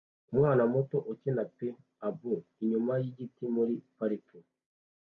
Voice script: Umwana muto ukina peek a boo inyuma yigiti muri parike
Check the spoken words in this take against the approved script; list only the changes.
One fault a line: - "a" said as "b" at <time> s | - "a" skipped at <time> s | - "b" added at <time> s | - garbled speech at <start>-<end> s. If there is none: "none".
none